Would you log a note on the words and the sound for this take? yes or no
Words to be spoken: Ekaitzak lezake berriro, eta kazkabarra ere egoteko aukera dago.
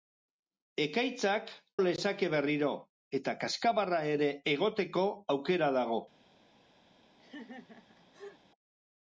yes